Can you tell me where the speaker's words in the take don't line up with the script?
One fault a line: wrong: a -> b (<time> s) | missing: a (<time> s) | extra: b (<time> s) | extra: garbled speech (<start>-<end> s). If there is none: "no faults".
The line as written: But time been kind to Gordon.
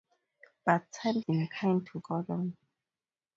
no faults